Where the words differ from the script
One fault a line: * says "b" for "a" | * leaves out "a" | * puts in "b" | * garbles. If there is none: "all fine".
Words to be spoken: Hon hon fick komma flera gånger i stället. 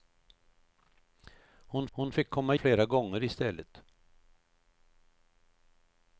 all fine